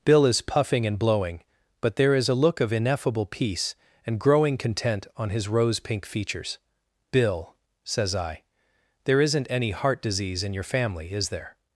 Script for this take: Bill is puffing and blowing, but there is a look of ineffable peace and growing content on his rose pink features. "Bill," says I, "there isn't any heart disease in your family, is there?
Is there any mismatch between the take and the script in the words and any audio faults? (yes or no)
no